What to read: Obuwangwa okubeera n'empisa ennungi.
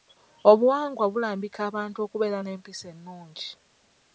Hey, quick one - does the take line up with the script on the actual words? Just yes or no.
no